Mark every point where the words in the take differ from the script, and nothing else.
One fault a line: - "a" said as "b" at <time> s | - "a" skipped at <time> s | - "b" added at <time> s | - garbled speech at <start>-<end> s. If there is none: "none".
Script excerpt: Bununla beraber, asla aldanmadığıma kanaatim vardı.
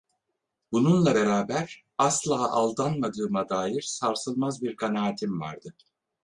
- "dair sarsılmaz bir" added at 3.5 s